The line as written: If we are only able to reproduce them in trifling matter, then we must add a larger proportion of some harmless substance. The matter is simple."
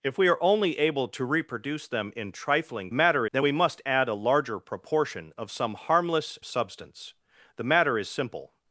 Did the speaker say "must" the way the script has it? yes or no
yes